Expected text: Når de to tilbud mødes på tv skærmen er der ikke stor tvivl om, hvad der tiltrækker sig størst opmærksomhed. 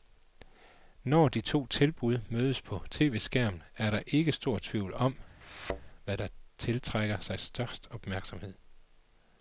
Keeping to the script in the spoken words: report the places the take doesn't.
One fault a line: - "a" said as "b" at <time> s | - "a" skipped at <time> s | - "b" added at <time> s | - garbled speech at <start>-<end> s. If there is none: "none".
none